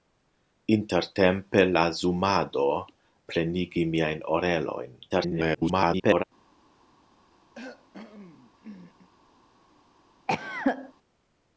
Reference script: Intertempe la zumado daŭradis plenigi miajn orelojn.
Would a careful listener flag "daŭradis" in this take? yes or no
yes